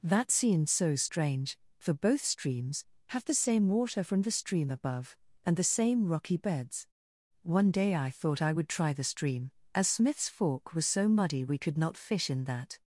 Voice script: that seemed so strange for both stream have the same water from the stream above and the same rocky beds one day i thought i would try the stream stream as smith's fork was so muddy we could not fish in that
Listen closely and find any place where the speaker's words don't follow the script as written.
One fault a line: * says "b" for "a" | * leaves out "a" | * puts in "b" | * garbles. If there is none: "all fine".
* says "streams" for "stream"
* leaves out "stream"